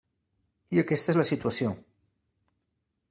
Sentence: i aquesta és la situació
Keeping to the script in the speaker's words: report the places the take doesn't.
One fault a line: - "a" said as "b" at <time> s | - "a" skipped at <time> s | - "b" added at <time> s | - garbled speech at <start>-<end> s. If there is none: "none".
none